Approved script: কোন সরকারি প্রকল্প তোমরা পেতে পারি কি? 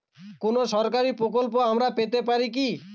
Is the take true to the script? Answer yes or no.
no